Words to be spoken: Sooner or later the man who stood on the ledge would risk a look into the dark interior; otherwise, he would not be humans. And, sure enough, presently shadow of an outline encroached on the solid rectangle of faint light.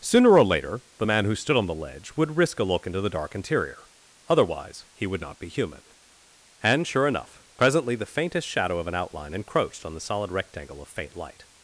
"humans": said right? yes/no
no